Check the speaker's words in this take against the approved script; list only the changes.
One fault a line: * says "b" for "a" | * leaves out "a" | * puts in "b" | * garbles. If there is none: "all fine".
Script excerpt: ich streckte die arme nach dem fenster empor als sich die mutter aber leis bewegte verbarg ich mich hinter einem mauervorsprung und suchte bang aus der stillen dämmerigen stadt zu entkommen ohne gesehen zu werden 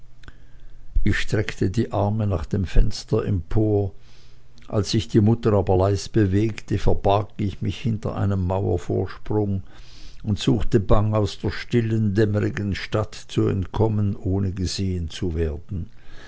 all fine